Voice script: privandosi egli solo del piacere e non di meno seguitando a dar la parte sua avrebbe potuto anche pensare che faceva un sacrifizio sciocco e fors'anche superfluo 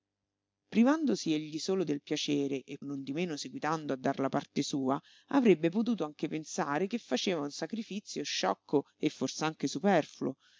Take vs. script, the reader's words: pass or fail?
pass